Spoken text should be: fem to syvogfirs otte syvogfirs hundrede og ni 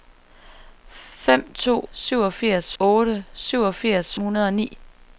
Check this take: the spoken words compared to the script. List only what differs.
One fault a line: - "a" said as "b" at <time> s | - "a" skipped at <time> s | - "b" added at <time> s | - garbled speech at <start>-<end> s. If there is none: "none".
none